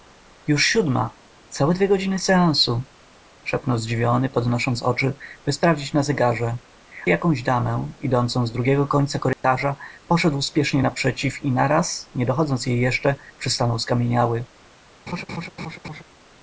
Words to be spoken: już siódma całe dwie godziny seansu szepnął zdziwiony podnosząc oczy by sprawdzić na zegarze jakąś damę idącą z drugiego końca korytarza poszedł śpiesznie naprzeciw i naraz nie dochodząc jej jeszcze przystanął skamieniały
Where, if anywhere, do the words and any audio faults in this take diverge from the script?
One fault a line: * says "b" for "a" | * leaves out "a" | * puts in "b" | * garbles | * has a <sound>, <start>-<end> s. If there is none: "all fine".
* has a dropout, 9.3-9.4 s
* has a laugh, 15.1-16.0 s